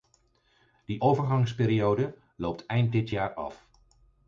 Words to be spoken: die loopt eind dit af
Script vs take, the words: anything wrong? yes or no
yes